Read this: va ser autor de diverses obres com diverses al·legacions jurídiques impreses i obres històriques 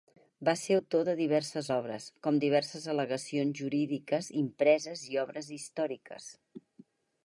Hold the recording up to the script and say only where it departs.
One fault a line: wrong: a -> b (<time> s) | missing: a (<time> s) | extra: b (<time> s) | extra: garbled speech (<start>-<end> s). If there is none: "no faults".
no faults